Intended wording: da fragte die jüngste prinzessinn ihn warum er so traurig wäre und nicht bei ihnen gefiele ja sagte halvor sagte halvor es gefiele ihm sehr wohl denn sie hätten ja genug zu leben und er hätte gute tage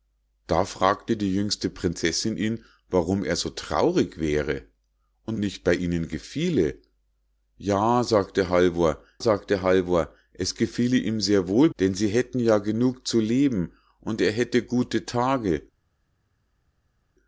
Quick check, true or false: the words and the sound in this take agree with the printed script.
true